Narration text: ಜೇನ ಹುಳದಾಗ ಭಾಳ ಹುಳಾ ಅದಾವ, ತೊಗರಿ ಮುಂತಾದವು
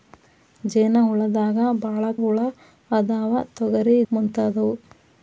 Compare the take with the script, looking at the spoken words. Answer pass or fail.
pass